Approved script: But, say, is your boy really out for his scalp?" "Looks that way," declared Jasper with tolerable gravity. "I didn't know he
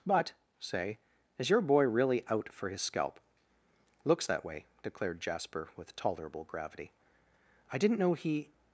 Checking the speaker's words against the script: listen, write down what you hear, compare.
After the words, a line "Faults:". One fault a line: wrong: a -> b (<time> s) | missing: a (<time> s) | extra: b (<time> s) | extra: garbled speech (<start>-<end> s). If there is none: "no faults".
But, say, is your boy really out for his scalp?" "Looks that way," declared Jasper with tolerable gravity. "I didn't know he
Faults:
no faults